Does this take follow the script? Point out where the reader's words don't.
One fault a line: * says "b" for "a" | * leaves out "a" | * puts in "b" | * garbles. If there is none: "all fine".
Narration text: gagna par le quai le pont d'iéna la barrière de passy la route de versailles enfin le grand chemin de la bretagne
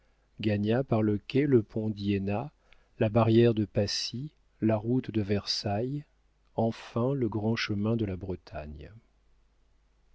all fine